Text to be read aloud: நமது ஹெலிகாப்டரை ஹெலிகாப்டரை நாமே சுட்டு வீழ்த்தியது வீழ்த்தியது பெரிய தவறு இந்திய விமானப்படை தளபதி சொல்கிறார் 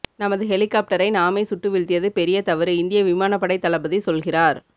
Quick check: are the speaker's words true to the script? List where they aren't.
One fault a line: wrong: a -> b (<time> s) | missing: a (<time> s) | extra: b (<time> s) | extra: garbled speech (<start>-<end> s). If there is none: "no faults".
missing: ஹெலிகாப்டரை (1.1 s)
missing: வீழ்த்தியது (2.1 s)